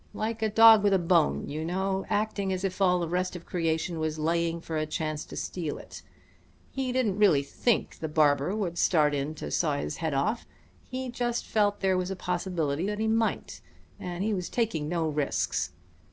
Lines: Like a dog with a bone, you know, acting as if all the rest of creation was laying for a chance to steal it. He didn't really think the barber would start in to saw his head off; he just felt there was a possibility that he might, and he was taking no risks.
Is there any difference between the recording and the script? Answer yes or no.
no